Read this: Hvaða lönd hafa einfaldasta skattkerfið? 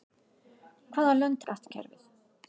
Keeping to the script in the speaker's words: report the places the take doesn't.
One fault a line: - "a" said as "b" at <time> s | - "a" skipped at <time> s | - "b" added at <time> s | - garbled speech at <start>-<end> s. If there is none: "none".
- "hafa einfaldasta" skipped at 1.4 s